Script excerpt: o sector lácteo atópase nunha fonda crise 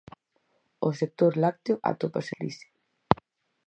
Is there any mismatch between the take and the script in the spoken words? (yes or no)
yes